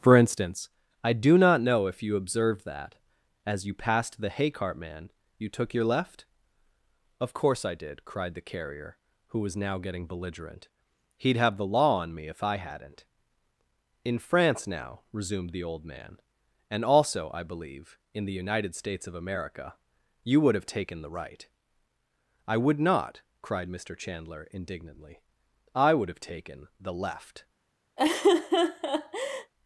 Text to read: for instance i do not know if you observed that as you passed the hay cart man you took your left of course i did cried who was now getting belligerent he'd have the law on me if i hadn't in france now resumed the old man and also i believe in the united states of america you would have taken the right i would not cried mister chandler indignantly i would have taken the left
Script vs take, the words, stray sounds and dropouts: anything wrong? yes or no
yes